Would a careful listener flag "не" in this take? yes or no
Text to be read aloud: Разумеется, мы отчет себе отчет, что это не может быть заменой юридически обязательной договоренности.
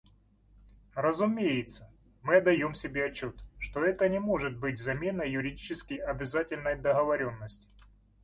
no